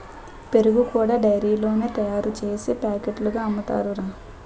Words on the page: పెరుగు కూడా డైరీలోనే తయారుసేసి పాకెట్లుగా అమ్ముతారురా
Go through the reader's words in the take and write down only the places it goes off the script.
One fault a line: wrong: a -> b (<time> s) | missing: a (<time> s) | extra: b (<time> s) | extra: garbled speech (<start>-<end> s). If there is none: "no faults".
no faults